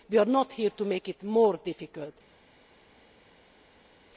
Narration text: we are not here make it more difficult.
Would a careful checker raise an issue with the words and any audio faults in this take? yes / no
yes